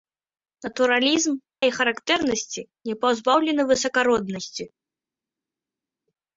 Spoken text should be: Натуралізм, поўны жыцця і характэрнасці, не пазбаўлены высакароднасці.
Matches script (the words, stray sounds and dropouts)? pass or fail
fail